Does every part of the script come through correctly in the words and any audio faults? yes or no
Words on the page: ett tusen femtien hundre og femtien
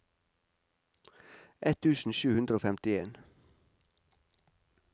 no